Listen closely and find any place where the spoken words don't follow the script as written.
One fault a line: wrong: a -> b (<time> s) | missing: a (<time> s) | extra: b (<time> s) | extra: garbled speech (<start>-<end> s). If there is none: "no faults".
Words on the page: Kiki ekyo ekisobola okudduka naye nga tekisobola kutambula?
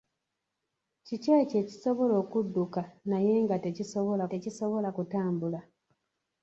extra: tekisobola (4.3 s)